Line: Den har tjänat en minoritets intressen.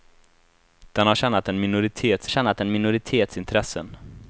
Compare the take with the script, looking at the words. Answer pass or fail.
fail